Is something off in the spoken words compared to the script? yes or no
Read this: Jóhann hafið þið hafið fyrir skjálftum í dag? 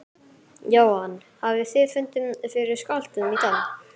yes